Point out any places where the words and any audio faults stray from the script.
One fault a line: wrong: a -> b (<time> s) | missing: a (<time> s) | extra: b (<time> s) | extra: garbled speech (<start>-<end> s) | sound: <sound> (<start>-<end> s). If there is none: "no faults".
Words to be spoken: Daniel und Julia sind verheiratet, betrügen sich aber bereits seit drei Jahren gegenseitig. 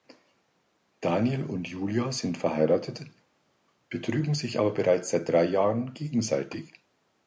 no faults